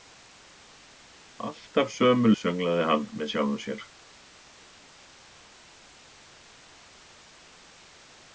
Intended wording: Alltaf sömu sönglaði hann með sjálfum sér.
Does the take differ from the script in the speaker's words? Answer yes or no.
no